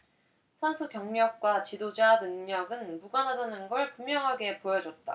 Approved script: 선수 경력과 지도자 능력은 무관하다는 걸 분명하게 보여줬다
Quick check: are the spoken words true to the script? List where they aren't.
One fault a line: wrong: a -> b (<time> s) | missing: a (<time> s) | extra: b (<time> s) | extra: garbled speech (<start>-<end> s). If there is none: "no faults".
no faults